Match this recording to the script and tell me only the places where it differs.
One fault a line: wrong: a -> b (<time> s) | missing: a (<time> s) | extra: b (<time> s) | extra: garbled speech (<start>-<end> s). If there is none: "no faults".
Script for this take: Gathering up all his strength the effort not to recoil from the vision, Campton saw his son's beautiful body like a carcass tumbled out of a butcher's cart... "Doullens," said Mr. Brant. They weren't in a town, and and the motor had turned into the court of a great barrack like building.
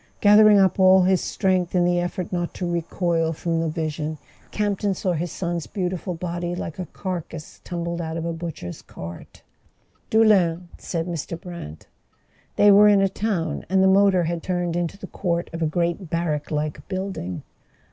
extra: in (1.8 s)
wrong: weren't -> were (12.7 s)
missing: and (13.8 s)